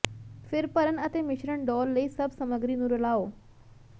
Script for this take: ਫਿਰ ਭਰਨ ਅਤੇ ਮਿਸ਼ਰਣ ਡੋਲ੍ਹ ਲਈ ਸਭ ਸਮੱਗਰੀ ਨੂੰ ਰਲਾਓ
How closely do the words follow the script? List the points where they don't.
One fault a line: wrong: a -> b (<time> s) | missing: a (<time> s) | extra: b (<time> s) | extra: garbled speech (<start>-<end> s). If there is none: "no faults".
no faults